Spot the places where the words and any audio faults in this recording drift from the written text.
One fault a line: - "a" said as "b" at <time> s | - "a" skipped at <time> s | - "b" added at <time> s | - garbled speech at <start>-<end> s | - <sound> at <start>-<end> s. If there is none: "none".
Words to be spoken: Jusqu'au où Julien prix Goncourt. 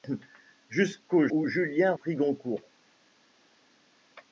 none